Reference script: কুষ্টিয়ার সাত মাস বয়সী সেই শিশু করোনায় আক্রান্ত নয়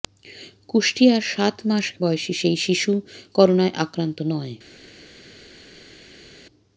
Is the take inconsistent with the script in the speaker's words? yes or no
no